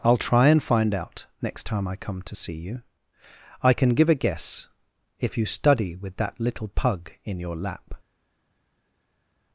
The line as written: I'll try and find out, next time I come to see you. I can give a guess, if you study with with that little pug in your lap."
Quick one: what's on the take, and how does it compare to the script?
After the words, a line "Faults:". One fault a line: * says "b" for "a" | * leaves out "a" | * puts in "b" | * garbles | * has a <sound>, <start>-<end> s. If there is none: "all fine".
I'll try and find out, next time I come to see you. I can give a guess, if you study with that little pug in your lap."
Faults:
* leaves out "with"